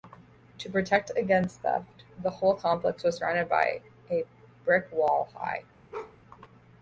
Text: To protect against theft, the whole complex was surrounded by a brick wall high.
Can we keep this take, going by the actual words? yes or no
yes